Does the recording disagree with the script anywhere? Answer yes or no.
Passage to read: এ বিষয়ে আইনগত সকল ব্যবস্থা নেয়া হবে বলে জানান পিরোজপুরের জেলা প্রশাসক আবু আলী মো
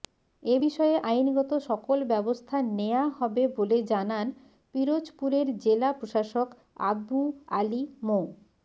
no